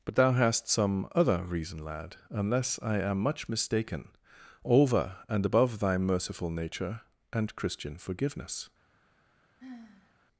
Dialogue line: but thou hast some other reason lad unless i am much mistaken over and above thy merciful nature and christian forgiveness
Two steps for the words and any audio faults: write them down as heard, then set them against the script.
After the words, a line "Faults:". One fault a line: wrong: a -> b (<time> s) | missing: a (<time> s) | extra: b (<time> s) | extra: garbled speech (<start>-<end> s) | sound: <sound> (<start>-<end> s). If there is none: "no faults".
but thou hast some other reason lad unless i am much mistaken over and above thy merciful nature and christian forgiveness
Faults:
sound: sigh (9.6-10.1 s)